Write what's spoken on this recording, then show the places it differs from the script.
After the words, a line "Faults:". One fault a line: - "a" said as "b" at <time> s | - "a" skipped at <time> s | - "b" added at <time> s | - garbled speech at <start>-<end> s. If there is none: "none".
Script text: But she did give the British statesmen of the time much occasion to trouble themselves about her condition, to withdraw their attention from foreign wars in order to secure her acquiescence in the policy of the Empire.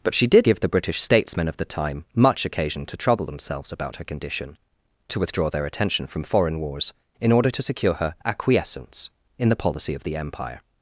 But she did give the British statesmen of the time much occasion to trouble themselves about her condition, to withdraw their attention from foreign wars in order to secure her acquiescence in the policy of the Empire.
Faults:
none